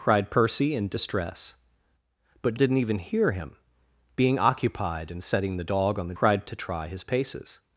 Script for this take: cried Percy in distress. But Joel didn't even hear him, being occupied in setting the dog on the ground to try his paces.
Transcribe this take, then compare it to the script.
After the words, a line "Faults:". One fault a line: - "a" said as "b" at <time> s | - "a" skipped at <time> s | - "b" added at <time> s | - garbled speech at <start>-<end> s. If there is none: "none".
cried Percy in distress. But Didn't even hear him, being occupied in setting the dog on the cried to try his paces.
Faults:
- "Joel" skipped at 2.5 s
- "ground" said as "cried" at 6.2 s